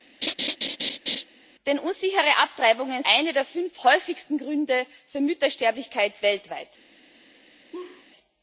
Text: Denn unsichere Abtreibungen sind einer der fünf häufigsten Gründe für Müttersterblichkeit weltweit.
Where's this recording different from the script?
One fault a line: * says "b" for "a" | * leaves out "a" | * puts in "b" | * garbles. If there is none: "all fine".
* leaves out "sind"